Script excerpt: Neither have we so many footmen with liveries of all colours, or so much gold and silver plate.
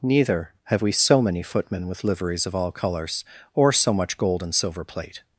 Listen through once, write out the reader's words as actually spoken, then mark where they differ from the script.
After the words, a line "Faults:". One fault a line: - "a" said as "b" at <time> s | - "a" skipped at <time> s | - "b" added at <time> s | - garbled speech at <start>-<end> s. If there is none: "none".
Neither have we so many footmen with liveries of all colours, or so much gold and silver plate.
Faults:
none